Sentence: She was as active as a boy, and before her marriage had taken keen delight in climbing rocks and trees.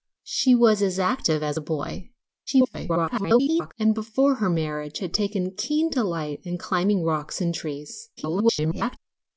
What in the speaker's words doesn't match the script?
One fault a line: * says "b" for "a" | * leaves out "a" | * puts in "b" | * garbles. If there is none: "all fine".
* garbles
* garbles